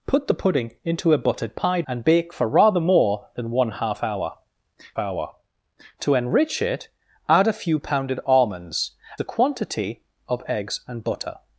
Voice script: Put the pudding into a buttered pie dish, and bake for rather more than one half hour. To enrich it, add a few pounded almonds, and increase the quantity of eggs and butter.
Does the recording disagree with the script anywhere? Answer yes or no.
yes